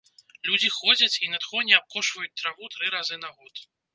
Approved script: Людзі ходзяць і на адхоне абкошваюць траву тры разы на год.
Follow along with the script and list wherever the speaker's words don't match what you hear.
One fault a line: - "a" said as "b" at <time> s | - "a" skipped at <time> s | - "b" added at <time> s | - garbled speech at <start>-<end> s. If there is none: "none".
none